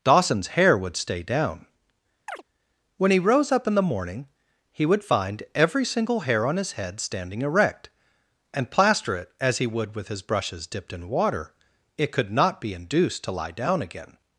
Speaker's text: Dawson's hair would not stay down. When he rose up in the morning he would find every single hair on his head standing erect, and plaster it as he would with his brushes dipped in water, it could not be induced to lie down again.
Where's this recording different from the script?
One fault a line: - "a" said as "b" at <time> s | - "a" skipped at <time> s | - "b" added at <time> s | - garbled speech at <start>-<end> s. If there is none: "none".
- "not" skipped at 1.0 s